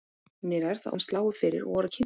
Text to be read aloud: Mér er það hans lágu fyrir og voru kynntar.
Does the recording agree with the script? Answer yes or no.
yes